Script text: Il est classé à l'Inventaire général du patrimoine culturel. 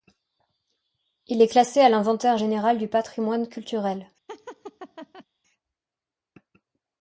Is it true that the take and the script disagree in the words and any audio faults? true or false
true